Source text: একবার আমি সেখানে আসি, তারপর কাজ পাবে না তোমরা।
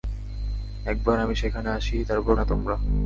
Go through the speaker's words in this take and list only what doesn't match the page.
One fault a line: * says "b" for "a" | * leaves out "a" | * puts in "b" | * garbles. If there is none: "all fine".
* leaves out "কাজ পাবে"